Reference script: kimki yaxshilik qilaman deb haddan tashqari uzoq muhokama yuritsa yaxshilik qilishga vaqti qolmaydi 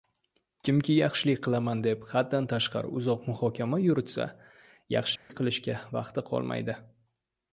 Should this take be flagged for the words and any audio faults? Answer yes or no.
yes